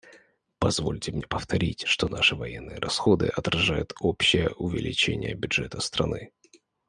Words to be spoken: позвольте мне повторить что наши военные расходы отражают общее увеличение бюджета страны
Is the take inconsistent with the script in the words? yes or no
no